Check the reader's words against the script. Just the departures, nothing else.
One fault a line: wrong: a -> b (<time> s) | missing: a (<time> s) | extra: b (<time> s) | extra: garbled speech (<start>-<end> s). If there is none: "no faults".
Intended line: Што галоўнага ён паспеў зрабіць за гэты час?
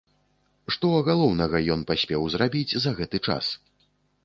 no faults